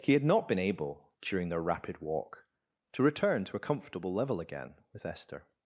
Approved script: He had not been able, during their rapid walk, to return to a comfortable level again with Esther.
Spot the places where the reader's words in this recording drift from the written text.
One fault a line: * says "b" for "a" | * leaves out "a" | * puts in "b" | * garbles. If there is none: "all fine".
all fine